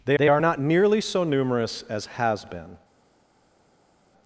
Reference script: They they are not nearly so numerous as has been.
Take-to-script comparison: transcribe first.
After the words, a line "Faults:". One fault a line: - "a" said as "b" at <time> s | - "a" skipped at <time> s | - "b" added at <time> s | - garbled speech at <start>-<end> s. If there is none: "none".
They they are not nearly so numerous as has been.
Faults:
none